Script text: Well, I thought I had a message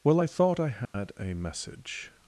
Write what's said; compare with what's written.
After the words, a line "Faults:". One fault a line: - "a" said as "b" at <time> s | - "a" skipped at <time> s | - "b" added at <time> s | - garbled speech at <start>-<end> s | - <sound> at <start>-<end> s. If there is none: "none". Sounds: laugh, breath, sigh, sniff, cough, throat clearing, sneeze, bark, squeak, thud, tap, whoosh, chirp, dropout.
Well, I thought I had a message
Faults:
- dropout at 0.8-0.9 s